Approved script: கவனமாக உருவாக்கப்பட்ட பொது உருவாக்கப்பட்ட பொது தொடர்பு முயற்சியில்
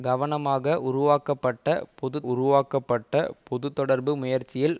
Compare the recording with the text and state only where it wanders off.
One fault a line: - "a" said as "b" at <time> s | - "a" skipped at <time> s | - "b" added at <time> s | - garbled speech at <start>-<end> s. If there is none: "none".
none